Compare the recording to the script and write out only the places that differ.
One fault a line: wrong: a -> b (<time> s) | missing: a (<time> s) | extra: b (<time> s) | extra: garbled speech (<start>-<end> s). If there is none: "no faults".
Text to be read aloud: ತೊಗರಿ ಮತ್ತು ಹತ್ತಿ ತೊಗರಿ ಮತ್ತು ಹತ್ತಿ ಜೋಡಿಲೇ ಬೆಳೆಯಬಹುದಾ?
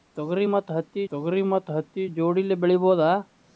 no faults